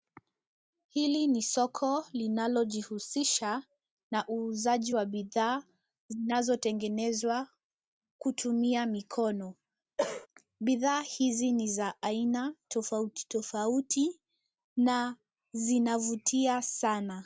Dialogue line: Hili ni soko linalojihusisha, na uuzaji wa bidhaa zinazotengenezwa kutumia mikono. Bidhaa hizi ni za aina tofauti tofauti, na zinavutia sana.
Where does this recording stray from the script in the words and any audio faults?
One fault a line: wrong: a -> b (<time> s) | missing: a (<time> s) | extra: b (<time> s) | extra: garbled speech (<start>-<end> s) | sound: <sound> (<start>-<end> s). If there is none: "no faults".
sound: cough (10.0-10.3 s)